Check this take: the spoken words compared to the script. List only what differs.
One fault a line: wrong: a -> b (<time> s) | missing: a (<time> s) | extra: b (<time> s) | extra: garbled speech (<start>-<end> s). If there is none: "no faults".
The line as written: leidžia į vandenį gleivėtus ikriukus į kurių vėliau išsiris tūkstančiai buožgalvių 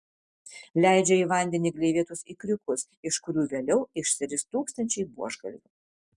wrong: į -> iš (3.1 s)